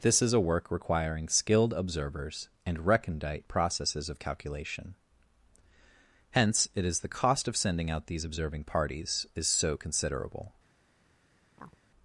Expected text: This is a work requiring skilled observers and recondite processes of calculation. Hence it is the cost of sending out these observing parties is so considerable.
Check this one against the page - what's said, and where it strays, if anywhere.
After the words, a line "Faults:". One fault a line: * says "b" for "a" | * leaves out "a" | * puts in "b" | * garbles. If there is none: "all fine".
This is a work requiring skilled observers and recondite processes of calculation. Hence it is the cost of sending out these observing parties is so considerable.
Faults:
all fine